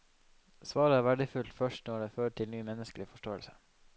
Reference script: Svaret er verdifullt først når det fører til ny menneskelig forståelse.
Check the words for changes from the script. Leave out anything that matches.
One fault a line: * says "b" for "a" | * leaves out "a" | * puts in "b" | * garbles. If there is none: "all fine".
all fine